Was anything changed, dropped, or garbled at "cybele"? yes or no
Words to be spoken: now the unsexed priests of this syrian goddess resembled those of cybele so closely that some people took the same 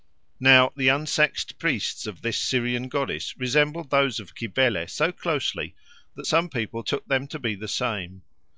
no